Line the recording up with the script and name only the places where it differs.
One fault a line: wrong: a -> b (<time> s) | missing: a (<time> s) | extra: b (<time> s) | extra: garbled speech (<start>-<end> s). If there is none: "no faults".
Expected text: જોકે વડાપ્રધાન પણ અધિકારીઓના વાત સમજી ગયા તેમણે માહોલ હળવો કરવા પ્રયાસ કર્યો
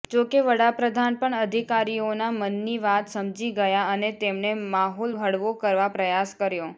extra: મનની (2.4 s)
extra: અને (3.9 s)